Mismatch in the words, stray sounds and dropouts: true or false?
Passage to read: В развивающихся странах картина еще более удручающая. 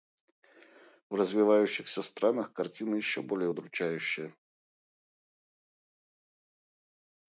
false